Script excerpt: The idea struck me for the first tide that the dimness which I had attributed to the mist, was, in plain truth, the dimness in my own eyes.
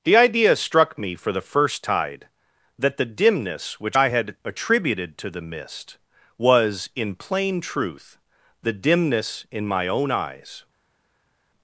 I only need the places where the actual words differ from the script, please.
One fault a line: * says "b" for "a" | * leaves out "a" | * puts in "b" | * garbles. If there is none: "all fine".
all fine